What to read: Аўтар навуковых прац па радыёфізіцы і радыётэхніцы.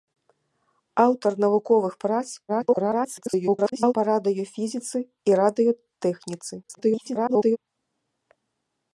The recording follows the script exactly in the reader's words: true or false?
false